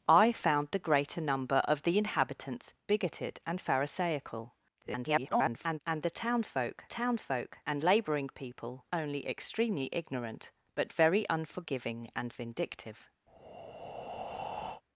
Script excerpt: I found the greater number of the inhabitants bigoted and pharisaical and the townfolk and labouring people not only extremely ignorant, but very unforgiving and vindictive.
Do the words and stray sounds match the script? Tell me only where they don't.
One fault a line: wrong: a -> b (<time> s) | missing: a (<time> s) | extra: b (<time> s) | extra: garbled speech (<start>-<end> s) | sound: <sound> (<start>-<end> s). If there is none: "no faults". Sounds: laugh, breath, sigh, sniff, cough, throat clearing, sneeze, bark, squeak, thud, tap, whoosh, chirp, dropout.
extra: garbled speech (4.8-5.8 s)
extra: townfolk (6.9 s)
missing: not (8.9 s)
sound: breath (13.3-14.8 s)